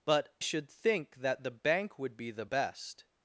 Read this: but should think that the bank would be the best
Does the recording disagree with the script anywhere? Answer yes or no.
no